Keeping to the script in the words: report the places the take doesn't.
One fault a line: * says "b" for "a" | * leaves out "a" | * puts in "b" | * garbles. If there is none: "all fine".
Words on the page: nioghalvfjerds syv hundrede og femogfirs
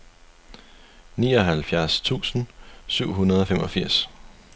* puts in "tusind"